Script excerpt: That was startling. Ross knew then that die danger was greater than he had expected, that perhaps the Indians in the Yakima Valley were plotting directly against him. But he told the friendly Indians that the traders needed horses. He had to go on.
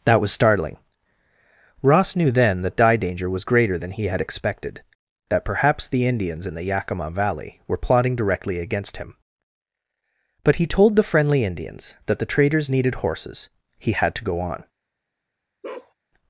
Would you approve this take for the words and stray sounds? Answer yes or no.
no